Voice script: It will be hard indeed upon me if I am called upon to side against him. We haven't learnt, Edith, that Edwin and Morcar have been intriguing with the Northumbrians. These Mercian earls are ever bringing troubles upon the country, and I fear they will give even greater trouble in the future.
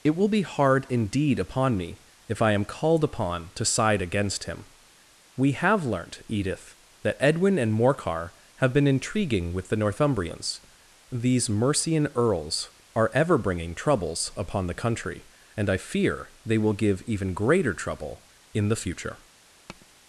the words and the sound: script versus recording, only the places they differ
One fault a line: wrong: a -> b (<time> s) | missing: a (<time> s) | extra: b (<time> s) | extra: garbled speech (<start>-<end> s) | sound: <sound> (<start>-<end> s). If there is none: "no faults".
wrong: haven't -> have (5.5 s)
sound: tap (19.7-19.9 s)